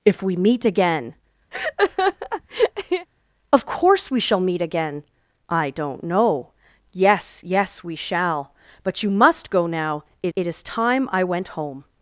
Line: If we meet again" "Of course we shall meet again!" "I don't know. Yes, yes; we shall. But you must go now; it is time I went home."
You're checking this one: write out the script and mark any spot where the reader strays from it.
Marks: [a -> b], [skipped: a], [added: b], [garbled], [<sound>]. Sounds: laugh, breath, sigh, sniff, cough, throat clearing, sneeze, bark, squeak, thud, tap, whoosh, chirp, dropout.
If we meet again" [laugh] "Of course we shall meet again!" "I don't know. Yes, yes; we shall. But you must go now; it [added: it] is time I went home."